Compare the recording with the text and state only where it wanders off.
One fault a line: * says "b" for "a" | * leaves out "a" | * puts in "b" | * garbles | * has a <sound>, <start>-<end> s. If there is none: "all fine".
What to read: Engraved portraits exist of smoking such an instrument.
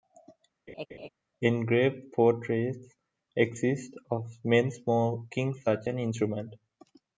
* has a laugh, 0.7-1.1 s
* puts in "men"